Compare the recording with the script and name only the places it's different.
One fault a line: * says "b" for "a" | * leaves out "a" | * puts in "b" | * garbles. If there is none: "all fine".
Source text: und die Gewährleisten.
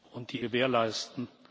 all fine